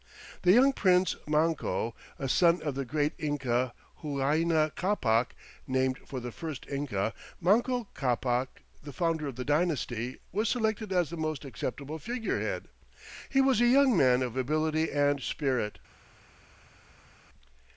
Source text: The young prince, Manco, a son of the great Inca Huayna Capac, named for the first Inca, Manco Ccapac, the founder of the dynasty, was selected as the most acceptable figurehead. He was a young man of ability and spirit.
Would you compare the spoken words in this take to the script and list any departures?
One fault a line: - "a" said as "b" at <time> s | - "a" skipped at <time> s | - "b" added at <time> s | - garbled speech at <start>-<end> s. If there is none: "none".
none